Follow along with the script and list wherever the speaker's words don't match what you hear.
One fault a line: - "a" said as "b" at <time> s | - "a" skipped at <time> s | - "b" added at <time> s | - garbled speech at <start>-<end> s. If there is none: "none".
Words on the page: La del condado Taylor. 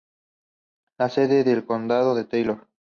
- "sede" added at 1.1 s
- "es" added at 2.2 s